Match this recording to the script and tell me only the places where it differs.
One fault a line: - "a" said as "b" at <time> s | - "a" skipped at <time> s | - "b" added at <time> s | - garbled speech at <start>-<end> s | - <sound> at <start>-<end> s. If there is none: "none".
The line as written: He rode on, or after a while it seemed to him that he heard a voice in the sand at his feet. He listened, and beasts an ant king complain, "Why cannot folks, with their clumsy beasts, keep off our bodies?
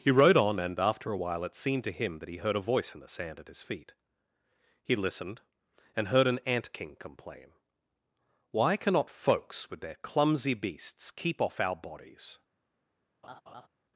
- "or" said as "and" at 0.6 s
- "beasts" said as "heard" at 6.1 s
- laugh at 13.2-13.7 s